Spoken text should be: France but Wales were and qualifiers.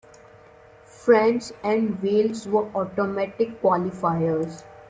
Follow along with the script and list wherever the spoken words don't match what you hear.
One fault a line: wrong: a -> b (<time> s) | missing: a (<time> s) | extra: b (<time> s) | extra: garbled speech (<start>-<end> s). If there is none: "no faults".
wrong: but -> and (1.6 s)
wrong: and -> automatic (2.7 s)